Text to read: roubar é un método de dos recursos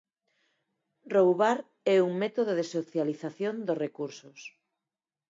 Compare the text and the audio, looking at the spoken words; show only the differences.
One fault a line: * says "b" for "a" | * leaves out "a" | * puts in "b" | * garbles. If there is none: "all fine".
* puts in "socialización"